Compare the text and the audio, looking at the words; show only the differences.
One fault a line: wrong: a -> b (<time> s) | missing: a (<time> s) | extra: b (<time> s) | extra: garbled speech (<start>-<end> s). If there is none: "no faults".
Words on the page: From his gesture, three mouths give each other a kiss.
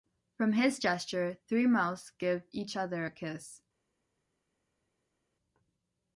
no faults